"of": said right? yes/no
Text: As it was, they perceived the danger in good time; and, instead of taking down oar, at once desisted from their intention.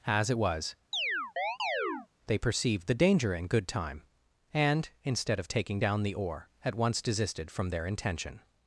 yes